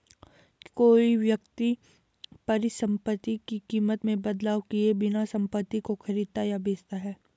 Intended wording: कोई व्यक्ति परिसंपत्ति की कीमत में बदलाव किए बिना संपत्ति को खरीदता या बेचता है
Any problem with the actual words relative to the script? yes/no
no